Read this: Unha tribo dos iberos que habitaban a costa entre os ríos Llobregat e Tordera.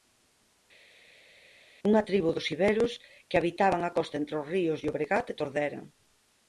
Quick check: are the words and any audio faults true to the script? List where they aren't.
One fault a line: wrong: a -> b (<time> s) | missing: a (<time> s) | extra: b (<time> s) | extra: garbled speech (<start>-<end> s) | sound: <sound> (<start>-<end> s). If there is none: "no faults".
no faults